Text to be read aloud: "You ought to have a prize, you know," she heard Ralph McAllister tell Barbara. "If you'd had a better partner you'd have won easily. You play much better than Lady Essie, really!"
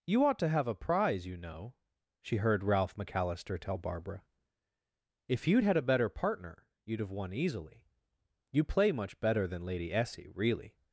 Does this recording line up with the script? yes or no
yes